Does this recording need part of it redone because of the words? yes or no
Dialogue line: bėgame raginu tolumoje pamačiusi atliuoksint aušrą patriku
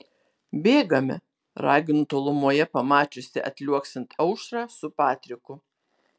yes